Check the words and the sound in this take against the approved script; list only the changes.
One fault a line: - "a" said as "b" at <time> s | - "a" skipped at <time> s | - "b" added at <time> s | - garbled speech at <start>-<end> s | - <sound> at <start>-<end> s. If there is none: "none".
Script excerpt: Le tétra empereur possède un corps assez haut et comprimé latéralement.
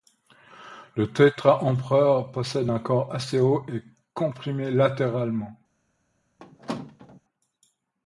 - squeak at 6.4-7.2 s